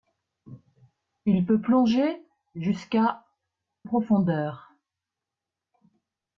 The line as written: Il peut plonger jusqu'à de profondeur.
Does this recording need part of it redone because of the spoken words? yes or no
yes